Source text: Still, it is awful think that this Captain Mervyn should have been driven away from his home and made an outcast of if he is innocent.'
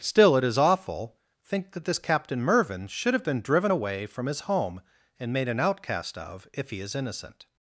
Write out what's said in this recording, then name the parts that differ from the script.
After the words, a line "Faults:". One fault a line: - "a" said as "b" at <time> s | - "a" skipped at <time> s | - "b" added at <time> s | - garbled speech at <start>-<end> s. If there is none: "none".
Still, it is awful think that this Captain Mervyn should have been driven away from his home and made an outcast of if he is innocent.'
Faults:
none